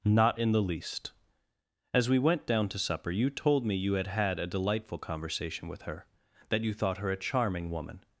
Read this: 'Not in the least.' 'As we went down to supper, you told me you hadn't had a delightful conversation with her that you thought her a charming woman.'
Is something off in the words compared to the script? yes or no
yes